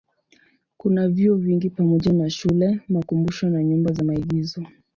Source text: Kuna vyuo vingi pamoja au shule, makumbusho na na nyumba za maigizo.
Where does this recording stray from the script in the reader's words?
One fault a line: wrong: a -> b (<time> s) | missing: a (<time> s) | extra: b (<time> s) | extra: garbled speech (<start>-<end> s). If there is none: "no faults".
wrong: au -> na (2.1 s)
missing: na (3.6 s)